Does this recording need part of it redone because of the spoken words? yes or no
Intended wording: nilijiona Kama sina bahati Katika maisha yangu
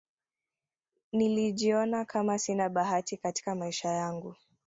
no